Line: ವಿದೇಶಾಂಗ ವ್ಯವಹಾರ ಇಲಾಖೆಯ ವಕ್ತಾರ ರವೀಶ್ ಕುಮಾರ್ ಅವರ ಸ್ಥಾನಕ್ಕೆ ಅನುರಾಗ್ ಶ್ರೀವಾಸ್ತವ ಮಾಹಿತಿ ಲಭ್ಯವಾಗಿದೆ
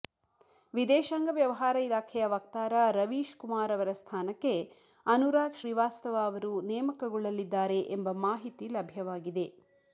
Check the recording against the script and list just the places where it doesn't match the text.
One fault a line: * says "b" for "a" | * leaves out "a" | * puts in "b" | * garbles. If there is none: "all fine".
* puts in "ಅವರು ನೇಮಕಗೊಳ್ಳಲಿದ್ದಾರೆ ಎಂಬ"